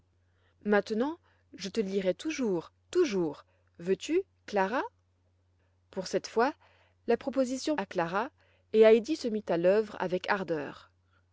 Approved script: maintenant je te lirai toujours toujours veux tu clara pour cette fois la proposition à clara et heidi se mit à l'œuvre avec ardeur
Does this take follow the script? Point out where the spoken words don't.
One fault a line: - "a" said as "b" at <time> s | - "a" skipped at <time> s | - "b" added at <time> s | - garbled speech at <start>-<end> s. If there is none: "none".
none